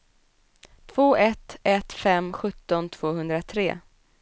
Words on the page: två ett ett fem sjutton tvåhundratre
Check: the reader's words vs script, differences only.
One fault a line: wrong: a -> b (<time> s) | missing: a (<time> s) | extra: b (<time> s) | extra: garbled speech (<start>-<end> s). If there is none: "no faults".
no faults